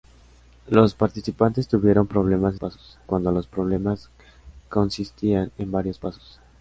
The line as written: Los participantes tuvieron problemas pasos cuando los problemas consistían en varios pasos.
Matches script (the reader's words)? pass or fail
pass